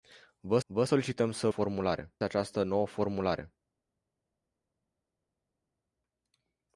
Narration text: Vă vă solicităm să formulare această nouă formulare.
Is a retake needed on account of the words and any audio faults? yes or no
no